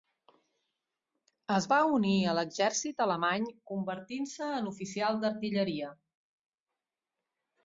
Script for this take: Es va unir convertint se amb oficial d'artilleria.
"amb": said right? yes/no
no